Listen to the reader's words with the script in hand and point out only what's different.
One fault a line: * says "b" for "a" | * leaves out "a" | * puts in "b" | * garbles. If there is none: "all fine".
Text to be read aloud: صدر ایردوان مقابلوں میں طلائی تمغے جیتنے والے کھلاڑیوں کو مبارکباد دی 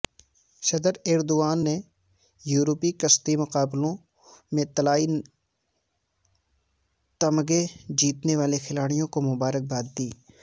* puts in "نے یورپی کشتی"